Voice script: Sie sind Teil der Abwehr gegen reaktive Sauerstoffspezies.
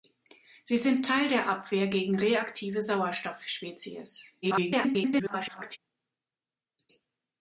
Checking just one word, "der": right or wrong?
right